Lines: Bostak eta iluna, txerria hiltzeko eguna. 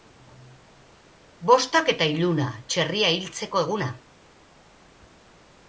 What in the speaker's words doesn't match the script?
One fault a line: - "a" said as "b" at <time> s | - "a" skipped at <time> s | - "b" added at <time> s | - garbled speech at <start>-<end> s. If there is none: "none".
none